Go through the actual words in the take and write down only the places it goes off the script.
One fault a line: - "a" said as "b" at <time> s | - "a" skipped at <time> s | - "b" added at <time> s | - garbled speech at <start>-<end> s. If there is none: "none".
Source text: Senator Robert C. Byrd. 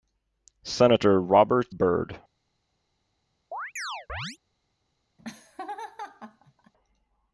- "C" skipped at 1.8 s